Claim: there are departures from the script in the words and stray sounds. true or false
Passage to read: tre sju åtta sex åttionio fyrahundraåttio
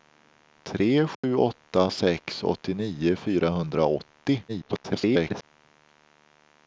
true